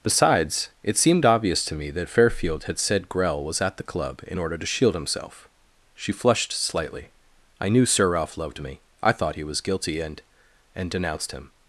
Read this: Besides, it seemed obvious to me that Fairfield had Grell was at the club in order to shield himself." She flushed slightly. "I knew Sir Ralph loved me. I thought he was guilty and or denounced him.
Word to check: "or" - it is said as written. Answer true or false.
false